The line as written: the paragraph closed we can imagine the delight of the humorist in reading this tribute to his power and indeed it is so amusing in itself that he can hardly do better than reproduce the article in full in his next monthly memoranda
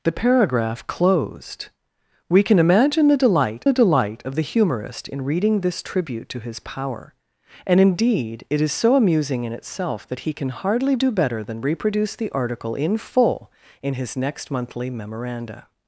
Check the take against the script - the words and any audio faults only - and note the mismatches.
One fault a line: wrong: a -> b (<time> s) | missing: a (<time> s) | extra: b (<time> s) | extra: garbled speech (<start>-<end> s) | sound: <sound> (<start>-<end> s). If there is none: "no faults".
extra: the delight (3.6 s)